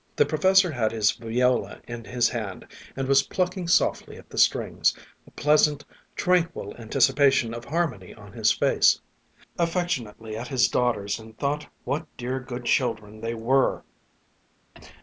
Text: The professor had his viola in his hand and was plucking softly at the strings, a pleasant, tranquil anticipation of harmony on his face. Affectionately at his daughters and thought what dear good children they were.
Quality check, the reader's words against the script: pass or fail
pass